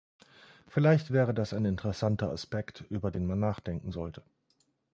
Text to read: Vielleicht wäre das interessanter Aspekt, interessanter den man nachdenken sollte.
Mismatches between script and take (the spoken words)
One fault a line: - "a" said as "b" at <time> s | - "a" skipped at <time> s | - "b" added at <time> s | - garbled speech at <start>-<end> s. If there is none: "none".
- "ein" added at 1.5 s
- "interessanter" said as "über" at 2.9 s